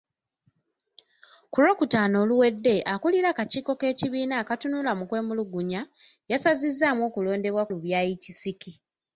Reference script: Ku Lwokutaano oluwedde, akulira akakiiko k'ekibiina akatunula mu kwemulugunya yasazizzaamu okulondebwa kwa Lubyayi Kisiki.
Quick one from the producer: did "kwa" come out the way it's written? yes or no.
no